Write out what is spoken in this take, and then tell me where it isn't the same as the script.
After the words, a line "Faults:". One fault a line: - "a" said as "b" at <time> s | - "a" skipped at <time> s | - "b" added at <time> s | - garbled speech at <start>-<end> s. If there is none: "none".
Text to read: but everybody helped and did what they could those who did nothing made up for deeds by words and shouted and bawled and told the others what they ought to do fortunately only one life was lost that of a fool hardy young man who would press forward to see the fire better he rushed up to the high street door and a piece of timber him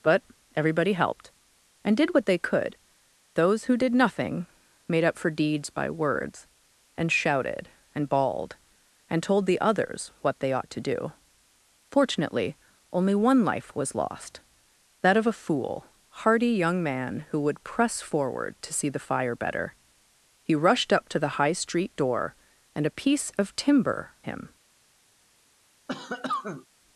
but everybody helped and did what they could those who did nothing made up for deeds by words and shouted and bawled and told the others what they ought to do fortunately only one life was lost that of a fool hardy young man who would press forward to see the fire better he rushed up to the high street door and a piece of timber him
Faults:
none